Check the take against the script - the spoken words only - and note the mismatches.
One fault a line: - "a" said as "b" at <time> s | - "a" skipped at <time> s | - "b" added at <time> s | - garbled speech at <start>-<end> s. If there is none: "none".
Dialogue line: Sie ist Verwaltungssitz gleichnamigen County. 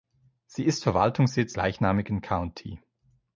none